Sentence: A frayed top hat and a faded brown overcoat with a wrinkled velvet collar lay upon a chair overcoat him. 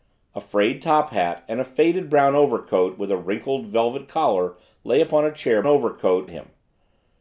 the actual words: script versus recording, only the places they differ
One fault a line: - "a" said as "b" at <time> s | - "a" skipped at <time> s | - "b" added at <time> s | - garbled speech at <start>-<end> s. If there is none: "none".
none